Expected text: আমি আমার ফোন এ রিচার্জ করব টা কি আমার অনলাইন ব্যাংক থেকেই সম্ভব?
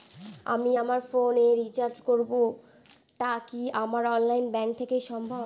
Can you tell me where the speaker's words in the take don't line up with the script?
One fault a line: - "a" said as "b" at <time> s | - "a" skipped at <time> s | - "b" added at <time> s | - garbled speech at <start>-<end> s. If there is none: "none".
none